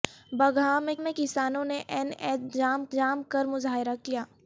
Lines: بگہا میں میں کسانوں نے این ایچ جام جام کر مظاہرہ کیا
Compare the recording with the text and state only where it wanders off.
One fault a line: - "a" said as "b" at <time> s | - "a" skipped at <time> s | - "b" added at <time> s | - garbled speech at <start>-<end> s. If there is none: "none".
none